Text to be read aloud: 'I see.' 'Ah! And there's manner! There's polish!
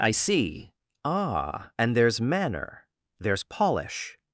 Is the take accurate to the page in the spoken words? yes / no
yes